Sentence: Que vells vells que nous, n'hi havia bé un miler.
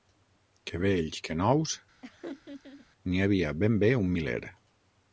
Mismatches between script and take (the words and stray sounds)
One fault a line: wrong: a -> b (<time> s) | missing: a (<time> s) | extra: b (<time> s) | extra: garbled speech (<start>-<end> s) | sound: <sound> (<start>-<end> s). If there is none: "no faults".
missing: vells (1.2 s)
sound: laugh (2.0-2.9 s)
extra: ben (3.7 s)